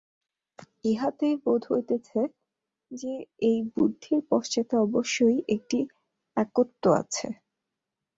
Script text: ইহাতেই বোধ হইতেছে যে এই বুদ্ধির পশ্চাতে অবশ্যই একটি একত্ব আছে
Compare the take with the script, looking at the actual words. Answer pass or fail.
pass